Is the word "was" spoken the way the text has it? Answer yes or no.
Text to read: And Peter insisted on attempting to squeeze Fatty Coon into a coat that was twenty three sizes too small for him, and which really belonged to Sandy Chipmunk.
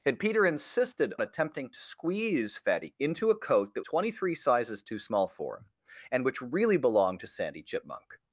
no